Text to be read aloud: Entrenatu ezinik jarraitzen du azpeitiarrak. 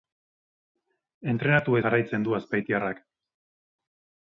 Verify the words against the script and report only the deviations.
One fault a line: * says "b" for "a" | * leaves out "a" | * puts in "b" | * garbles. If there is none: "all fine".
* leaves out "ezinik"